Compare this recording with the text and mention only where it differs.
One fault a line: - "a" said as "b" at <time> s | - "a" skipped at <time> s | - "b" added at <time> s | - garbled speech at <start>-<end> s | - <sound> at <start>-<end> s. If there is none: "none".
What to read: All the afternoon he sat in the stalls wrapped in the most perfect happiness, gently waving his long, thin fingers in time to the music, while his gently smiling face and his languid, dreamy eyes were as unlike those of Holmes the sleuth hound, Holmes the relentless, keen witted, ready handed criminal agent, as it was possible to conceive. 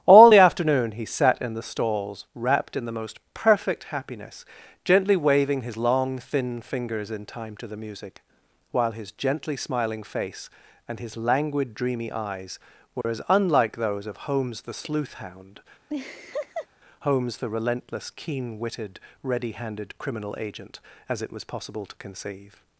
- dropout at 13.0-13.0 s
- laugh at 15.9-16.7 s